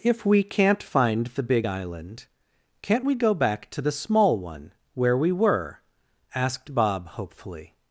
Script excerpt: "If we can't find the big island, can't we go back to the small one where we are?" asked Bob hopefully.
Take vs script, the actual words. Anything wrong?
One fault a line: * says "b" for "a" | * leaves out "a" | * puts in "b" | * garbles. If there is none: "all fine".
* says "were" for "are"